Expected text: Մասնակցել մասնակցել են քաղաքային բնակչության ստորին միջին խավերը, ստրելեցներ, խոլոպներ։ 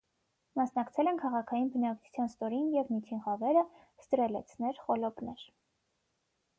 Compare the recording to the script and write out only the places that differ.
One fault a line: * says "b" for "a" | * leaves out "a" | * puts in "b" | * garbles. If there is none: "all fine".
* leaves out "մասնակցել"
* puts in "և"